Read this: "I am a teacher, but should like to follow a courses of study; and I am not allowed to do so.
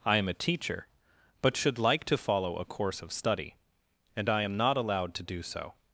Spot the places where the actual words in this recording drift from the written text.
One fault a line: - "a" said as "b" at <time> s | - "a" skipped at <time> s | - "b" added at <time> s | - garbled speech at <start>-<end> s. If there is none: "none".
- "courses" said as "course" at 2.6 s